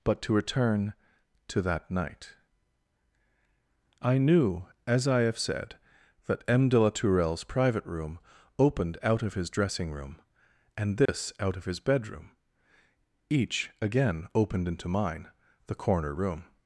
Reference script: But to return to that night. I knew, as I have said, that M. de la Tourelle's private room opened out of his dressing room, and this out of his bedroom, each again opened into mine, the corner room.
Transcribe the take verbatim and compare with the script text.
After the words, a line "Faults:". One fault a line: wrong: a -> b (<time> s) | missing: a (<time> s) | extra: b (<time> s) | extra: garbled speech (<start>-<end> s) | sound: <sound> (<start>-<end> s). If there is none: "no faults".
But to return to that night. I knew, as I have said, that M. de la Tourelle's private room opened out of his dressing room, and this out of his bedroom, each again opened into mine, the corner room.
Faults:
sound: dropout (11.1-11.1 s)